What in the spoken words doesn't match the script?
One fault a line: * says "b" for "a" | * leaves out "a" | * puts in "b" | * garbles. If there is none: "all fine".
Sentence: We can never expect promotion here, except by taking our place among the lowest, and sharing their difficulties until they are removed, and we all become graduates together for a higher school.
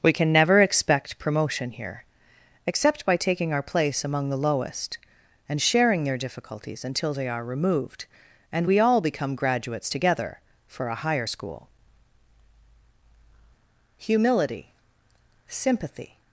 * puts in "Humility Sympathy"